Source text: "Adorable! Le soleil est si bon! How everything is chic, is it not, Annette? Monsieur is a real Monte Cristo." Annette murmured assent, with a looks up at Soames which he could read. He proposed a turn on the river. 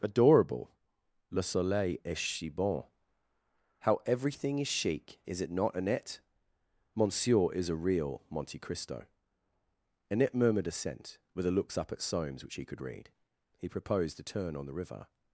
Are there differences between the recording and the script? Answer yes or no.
no